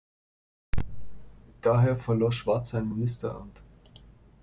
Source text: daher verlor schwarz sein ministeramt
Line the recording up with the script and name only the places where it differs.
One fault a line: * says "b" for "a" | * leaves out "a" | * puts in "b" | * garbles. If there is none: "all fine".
all fine